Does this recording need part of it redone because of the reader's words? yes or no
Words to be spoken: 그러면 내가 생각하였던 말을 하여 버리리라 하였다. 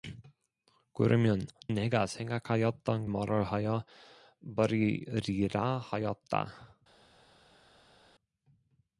no